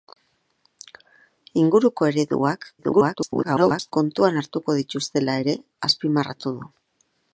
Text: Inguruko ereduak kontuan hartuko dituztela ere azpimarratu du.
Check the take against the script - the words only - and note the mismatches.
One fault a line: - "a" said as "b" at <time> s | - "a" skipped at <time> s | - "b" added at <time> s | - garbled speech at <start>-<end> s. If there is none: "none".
- garbled speech at 2.8-3.9 s